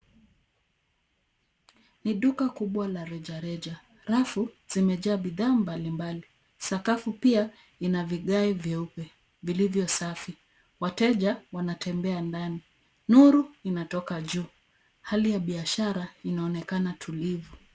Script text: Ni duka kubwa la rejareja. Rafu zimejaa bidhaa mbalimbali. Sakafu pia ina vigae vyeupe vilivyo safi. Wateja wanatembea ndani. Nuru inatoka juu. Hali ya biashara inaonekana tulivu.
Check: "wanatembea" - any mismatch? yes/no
no